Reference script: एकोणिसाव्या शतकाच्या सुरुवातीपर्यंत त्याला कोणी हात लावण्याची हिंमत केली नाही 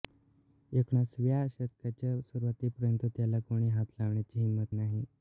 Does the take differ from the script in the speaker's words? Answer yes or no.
yes